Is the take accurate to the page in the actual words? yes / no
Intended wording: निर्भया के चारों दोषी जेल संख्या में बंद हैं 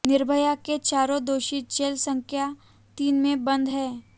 no